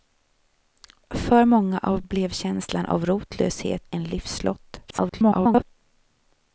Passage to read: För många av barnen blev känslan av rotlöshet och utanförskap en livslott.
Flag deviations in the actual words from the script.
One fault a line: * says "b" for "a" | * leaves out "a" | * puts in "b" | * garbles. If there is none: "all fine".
* leaves out "barnen"
* leaves out "och utanförskap"
* garbles